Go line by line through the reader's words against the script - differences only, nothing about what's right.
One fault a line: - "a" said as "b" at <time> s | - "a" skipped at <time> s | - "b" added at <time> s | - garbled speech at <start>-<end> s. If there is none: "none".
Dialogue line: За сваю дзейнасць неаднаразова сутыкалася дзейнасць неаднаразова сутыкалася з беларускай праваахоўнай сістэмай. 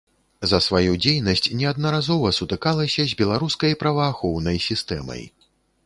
- "дзейнасць неаднаразова сутыкалася" skipped at 3.1 s